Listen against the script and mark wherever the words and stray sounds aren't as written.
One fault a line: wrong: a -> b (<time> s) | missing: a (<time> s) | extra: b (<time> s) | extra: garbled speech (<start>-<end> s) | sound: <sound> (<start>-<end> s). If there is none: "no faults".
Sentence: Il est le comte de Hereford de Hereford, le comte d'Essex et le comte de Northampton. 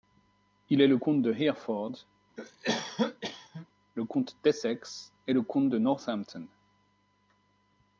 missing: de Hereford (2.1 s)
sound: cough (2.4-3.7 s)